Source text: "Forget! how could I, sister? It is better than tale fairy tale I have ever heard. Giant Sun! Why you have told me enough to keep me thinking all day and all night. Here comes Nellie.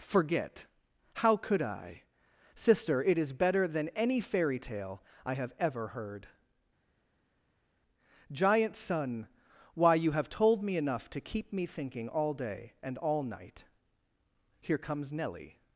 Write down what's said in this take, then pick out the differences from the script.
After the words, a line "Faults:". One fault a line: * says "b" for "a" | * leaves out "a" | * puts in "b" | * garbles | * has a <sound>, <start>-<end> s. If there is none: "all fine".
"Forget! how could I, sister? It is better than any fairy tale I have ever heard. Giant Sun! Why you have told me enough to keep me thinking all day and all night. Here comes Nellie.
Faults:
* says "any" for "tale"